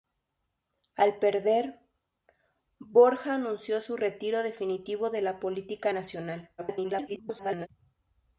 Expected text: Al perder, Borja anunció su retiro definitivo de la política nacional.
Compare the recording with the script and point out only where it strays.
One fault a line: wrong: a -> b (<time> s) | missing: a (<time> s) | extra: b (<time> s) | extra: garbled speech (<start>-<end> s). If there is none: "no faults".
extra: garbled speech (6.6-7.7 s)